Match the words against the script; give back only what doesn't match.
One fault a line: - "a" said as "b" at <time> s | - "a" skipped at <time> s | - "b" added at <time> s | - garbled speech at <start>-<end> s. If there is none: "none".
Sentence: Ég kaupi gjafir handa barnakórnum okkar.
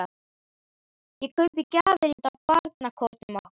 none